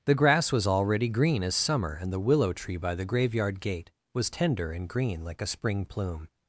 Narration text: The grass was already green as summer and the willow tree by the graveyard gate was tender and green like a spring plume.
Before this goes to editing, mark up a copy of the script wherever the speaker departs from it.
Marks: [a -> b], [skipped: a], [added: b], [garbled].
The grass was already green as summer and the willow tree by the graveyard gate was tender and green like a spring plume.